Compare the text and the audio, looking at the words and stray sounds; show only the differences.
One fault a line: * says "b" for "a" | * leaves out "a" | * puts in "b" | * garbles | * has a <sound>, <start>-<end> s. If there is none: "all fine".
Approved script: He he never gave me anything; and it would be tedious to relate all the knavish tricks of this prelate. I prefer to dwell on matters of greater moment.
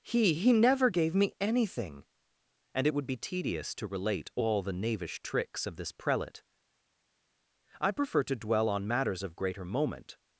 all fine